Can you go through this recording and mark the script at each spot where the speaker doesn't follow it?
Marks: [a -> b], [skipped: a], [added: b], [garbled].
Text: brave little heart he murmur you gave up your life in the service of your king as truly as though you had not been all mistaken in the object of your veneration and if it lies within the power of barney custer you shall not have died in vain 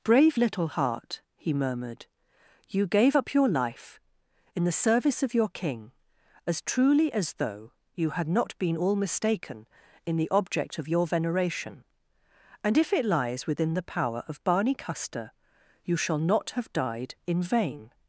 brave little heart he [murmur -> murmured] you gave up your life in the service of your king as truly as though you had not been all mistaken in the object of your veneration and if it lies within the power of barney custer you shall not have died in vain